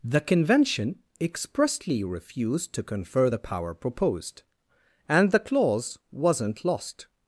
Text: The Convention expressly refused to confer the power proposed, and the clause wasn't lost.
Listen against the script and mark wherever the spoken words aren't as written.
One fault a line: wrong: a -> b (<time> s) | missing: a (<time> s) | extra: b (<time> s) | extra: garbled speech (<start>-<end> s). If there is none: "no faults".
no faults